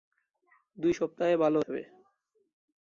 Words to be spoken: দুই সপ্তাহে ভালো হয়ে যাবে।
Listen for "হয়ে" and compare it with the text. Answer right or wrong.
wrong